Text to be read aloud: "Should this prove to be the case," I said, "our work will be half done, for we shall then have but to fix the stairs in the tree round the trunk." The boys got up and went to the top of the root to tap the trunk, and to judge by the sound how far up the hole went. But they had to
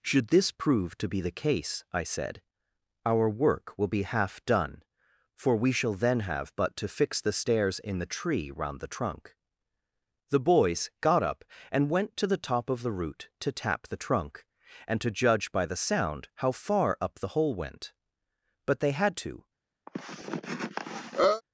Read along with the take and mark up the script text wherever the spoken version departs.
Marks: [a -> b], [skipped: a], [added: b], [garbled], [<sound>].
"Should this prove to be the case," I said, "our work will be half done, for we shall then have but to fix the stairs in the tree round the trunk." The boys got up and went to the top of the root to tap the trunk, and to judge by the sound how far up the hole went. But they had to [cough]